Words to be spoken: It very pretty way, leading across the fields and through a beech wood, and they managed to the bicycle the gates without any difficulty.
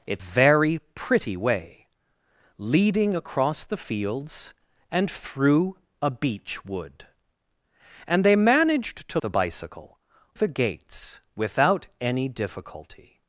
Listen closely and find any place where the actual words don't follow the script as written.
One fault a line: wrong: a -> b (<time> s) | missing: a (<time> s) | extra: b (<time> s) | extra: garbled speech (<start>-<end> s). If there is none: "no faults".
no faults